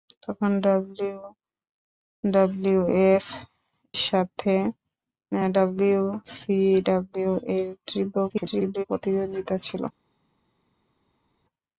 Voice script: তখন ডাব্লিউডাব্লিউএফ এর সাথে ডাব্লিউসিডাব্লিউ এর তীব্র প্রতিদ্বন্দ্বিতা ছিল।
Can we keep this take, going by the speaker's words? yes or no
no